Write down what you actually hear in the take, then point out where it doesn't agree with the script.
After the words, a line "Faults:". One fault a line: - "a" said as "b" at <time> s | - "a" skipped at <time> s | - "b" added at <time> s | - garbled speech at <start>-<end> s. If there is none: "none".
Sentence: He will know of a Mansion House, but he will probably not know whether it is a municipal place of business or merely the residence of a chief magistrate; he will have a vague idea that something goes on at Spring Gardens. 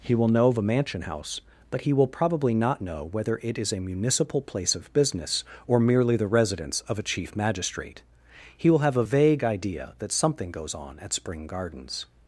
He will know of a Mansion House, but he will probably not know whether it is a municipal place of business or merely the residence of a chief magistrate; he will have a vague idea that something goes on at Spring Gardens.
Faults:
none